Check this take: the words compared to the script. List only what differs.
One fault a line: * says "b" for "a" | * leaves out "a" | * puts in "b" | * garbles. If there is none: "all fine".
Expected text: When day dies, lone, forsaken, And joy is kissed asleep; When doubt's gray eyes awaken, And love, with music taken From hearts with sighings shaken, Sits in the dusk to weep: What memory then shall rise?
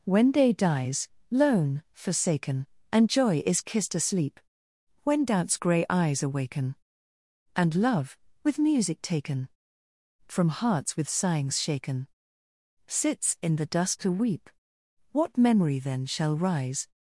all fine